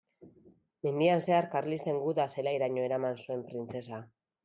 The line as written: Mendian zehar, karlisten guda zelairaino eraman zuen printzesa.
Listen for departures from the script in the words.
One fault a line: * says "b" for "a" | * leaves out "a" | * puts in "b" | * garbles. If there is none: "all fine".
all fine